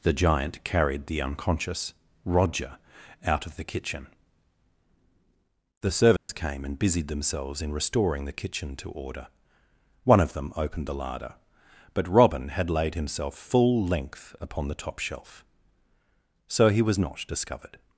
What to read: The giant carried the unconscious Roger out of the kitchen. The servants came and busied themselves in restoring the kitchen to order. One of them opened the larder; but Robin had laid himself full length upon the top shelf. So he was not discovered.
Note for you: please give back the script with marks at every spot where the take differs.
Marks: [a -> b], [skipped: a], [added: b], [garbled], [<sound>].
The giant carried the unconscious Roger out of the kitchen. The servants [dropout] came and busied themselves in restoring the kitchen to order. One of them opened the larder; but Robin had laid himself full length upon the top shelf. So he was not discovered.